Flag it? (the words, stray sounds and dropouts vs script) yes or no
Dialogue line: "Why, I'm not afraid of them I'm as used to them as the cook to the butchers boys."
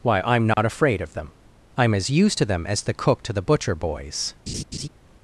yes